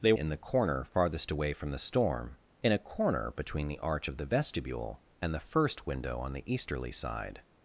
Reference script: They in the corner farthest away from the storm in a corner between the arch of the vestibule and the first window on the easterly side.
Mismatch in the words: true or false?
false